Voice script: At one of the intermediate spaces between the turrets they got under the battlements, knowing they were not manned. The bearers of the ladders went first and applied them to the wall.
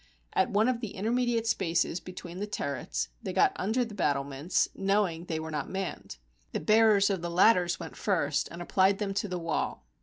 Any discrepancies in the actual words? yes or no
no